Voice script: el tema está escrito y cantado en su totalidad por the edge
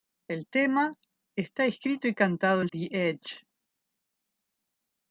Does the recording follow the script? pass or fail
fail